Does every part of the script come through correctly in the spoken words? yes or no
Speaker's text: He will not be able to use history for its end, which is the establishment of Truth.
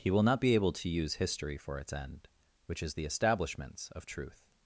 no